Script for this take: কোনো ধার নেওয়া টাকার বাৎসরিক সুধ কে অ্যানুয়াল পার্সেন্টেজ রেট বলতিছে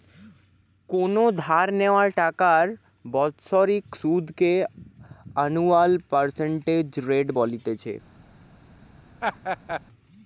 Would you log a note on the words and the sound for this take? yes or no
yes